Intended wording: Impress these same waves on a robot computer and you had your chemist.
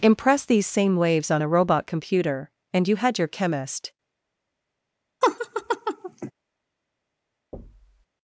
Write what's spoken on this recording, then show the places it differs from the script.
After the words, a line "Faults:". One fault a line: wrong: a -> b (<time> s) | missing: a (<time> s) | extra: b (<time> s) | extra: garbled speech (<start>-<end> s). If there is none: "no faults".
Impress these same waves on a robot computer and you had your chemist.
Faults:
no faults